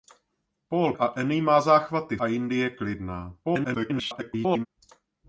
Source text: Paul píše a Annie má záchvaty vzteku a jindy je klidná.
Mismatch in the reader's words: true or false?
true